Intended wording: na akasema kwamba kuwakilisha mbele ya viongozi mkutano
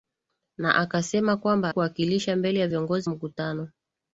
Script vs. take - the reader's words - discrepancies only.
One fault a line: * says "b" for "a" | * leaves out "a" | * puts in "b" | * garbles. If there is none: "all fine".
all fine